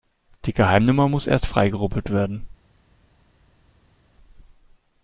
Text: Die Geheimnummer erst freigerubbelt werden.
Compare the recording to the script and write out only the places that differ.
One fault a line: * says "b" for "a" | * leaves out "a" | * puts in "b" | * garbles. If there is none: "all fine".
* puts in "muss"